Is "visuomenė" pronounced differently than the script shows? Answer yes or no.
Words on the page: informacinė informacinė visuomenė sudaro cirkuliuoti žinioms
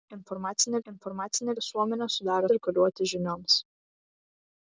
no